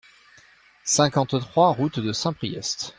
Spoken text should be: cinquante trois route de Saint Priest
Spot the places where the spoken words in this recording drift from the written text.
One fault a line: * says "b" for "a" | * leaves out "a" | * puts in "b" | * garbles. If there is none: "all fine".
all fine